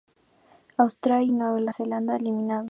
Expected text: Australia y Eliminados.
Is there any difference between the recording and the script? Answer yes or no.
yes